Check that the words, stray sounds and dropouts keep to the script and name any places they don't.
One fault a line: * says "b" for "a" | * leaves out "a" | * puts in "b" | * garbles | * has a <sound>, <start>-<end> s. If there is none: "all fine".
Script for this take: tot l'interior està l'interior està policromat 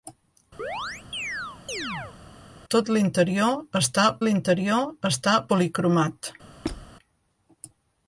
* has a chirp, 0.6-2.2 s
* has a squeak, 6.6-6.9 s